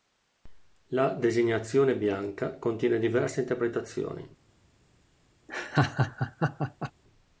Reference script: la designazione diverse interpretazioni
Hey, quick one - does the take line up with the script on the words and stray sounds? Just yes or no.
no